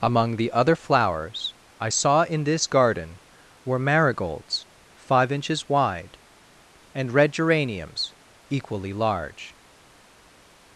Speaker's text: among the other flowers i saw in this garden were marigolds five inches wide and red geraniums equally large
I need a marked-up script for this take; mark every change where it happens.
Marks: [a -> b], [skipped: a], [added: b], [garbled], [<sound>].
among the other flowers i saw in this garden were marigolds five inches wide and red geraniums equally large